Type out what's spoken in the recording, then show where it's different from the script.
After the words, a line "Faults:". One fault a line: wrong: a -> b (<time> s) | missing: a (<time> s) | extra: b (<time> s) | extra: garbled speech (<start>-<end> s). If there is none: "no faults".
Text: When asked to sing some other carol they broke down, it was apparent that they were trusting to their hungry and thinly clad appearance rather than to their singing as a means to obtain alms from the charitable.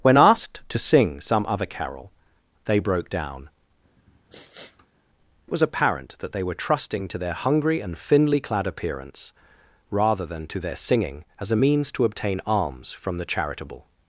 When asked to sing some other carol they broke down, it was apparent that they were trusting to their hungry and thinly clad appearance rather than to their singing as a means to obtain alms from the charitable.
Faults:
no faults